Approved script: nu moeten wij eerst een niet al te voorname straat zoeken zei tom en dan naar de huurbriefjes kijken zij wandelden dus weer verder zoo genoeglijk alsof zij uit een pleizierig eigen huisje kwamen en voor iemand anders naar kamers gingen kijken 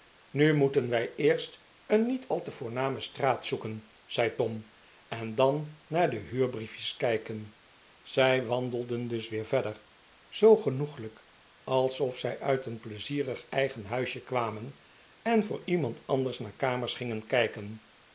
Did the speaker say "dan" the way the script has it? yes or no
yes